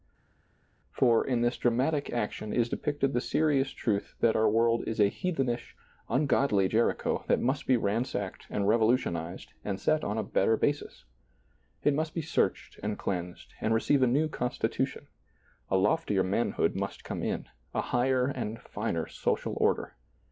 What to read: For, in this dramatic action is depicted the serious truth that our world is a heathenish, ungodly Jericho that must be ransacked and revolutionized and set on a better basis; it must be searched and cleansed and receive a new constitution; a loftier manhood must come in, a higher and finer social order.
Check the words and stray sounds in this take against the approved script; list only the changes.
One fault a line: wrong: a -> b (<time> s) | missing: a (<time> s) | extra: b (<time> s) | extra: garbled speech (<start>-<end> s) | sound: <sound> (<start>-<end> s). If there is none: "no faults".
no faults